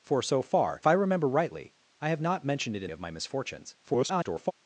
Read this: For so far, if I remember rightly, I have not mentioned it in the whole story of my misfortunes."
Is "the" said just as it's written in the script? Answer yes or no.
no